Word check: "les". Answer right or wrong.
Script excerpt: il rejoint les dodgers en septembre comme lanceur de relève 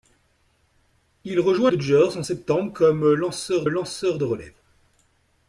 wrong